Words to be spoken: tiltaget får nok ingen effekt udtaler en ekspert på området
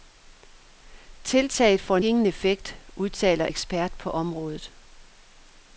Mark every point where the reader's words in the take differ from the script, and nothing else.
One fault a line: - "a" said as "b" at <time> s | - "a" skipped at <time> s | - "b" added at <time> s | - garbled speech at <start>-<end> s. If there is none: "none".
- "nok" skipped at 2.0 s
- "en" skipped at 3.5 s